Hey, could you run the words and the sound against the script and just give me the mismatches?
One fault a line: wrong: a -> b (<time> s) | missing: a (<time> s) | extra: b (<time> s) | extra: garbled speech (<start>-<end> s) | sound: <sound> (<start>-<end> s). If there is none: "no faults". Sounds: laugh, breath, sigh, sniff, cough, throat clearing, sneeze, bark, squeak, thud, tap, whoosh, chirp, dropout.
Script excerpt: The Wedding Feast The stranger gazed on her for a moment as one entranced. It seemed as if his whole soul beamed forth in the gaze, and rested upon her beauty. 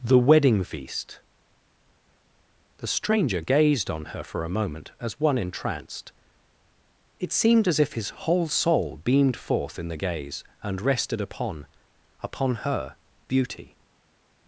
extra: upon (12.2 s)